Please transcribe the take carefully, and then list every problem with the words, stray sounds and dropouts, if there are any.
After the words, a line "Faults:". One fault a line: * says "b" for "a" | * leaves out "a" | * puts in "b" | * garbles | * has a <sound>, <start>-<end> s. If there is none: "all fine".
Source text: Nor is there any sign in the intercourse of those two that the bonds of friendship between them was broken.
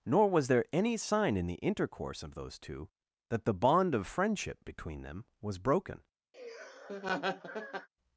Nor was there any sign in the intercourse of those two that the bond of friendship between them was broken.
Faults:
* says "was" for "is"
* says "bond" for "bonds"
* has a laugh, 6.3-7.9 s